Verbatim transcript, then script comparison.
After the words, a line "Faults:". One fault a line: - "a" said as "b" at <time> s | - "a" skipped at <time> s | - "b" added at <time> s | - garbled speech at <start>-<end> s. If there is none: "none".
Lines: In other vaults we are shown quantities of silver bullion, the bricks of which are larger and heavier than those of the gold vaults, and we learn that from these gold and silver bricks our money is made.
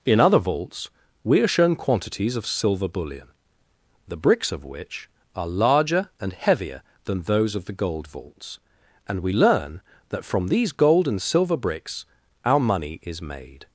In other vaults we are shown quantities of silver bullion, the bricks of which are larger and heavier than those of the gold vaults, and we learn that from these gold and silver bricks our money is made.
Faults:
none